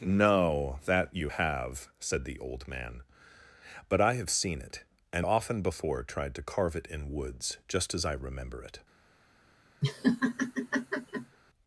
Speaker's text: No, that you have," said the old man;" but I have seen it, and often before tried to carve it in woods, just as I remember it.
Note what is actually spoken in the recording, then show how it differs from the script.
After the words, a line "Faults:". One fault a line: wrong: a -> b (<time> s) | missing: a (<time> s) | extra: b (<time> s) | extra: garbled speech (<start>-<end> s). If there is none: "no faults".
No, that you have," said the old man;" but I have seen it, and often before tried to carve it in woods, just as I remember it.
Faults:
no faults